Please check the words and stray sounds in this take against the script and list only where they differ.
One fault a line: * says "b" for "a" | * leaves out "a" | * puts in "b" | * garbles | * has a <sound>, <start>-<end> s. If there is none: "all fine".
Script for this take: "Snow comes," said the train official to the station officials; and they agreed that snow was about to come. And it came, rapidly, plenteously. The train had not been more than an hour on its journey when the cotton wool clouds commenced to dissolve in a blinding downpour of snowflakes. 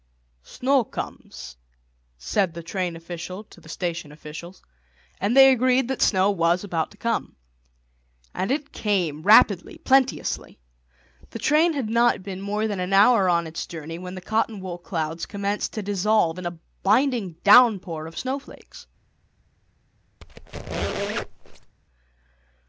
* has a squeak, 20.2-21.8 s